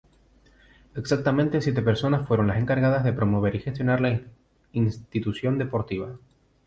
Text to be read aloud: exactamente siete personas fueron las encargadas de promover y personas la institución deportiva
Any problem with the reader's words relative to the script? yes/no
yes